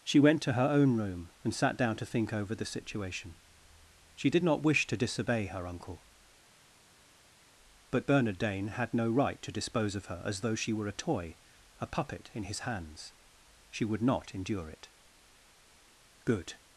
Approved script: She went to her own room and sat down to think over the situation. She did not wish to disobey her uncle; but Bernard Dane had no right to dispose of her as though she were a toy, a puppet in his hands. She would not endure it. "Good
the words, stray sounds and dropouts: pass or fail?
pass